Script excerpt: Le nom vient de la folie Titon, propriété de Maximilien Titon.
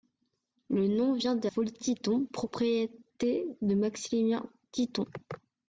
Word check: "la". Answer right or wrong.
wrong